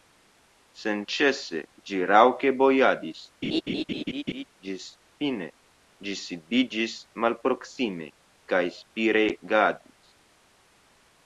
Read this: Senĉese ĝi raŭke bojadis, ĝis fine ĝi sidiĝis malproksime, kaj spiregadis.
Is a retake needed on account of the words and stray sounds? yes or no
yes